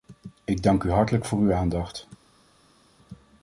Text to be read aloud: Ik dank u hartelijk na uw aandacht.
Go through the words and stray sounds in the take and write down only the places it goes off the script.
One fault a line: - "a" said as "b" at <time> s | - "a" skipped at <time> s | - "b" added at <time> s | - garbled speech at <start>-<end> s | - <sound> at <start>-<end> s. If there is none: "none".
- "na" said as "voor" at 1.2 s